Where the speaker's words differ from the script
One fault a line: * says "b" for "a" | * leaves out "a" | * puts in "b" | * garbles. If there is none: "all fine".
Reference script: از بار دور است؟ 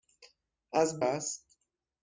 * leaves out "بار دور"